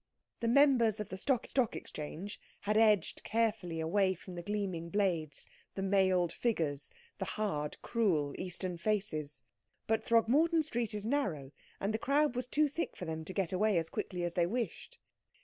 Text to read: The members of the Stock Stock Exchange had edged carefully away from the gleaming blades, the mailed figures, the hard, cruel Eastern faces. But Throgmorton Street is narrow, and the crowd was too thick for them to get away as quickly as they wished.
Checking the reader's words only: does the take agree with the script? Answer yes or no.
yes